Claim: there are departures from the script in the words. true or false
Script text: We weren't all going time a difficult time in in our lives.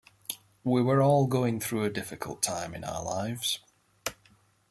true